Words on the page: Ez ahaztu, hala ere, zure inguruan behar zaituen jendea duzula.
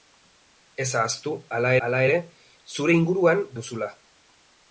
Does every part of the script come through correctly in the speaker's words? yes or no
no